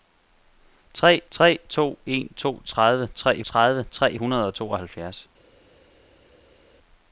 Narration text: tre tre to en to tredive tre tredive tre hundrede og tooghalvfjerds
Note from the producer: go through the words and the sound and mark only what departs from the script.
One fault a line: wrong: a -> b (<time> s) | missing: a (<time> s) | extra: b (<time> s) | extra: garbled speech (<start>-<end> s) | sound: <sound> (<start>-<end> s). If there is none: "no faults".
no faults